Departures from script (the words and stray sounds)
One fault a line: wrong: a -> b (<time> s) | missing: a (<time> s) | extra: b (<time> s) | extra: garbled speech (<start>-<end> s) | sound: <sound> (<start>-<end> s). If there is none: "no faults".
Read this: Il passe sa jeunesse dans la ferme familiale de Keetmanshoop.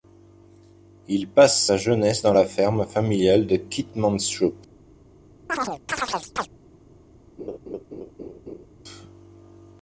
sound: chirp (5.5-6.5 s)
sound: laugh (7.4-8.7 s)